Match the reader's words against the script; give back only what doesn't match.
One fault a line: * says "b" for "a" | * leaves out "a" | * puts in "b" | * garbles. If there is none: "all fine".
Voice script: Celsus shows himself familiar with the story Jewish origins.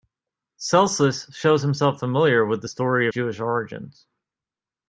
all fine